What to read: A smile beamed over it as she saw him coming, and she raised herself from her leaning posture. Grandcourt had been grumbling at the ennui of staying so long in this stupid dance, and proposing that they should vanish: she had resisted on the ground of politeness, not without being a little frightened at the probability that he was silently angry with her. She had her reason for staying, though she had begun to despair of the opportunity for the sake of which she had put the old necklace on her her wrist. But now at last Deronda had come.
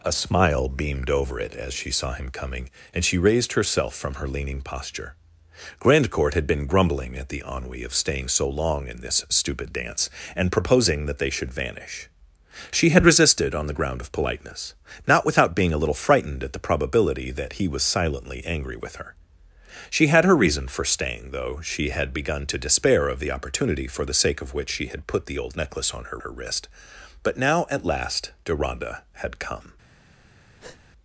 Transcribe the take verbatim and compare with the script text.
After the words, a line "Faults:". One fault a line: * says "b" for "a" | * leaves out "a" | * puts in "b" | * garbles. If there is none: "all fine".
A smile beamed over it as she saw him coming, and she raised herself from her leaning posture. Grandcourt had been grumbling at the ennui of staying so long in this stupid dance, and proposing that they should vanish: she had resisted on the ground of politeness, not without being a little frightened at the probability that he was silently angry with her. She had her reason for staying, though she had begun to despair of the opportunity for the sake of which she had put the old necklace on her her wrist. But now at last Deronda had come.
Faults:
all fine